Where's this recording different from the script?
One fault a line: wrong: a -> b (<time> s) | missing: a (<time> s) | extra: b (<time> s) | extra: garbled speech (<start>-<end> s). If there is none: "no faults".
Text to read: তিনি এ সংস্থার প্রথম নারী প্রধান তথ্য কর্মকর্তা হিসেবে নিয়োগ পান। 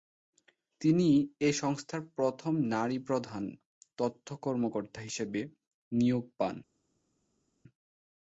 no faults